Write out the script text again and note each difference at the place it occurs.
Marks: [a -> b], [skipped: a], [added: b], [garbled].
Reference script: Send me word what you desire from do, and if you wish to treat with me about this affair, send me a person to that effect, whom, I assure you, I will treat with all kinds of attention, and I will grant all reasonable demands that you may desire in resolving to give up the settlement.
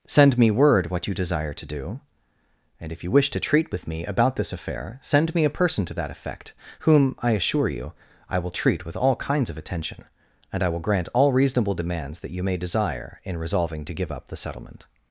Send me word what you desire [from -> to] do, and if you wish to treat with me about this affair, send me a person to that effect, whom, I assure you, I will treat with all kinds of attention, and I will grant all reasonable demands that you may desire in resolving to give up the settlement.